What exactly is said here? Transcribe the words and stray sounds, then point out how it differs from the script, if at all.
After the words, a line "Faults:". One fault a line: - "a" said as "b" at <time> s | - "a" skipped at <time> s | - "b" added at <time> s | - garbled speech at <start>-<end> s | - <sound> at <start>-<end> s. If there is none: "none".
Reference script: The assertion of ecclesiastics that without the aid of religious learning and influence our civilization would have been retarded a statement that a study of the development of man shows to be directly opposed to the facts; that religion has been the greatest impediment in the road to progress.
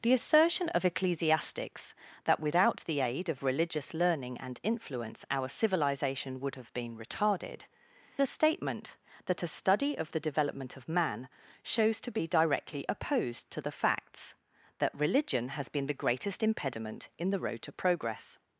The assertion of ecclesiastics that without the aid of religious learning and influence our civilization would have been retarded a statement that a study of the development of man shows to be directly opposed to the facts; that religion has been the greatest impediment in the road to progress.
Faults:
none